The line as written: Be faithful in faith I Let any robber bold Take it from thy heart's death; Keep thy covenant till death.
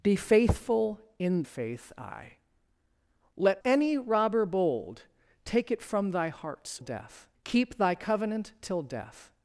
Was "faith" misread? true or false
false